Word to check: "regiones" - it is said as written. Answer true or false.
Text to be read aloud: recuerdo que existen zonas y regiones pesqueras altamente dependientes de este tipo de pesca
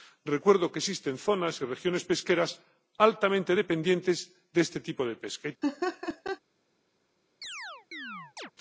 true